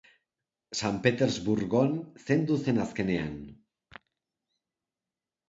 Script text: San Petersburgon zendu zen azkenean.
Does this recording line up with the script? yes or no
yes